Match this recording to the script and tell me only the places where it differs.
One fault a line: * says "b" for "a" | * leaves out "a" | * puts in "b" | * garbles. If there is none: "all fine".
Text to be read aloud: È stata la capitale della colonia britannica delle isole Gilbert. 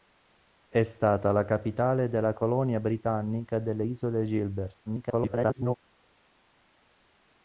* garbles